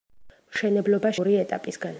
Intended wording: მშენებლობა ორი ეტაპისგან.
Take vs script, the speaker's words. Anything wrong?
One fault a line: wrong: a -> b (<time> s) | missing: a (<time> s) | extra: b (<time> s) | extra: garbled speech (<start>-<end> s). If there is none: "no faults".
no faults